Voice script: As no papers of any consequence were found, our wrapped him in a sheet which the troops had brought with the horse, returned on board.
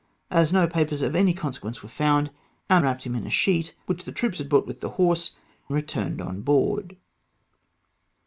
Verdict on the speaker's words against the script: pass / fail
pass